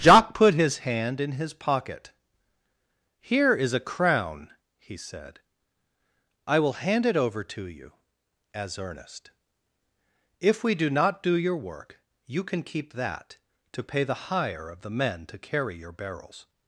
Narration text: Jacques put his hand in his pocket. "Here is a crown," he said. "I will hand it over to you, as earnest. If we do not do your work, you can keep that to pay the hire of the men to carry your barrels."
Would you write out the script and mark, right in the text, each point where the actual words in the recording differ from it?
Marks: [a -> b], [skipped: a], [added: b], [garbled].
Jacques put his hand in his pocket. "Here is a crown," he said. "I will hand it over to you, as earnest. If we do not do your work, you can keep that to pay the hire of the men to carry your barrels."